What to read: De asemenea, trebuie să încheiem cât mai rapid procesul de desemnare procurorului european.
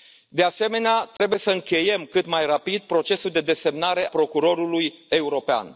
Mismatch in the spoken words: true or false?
false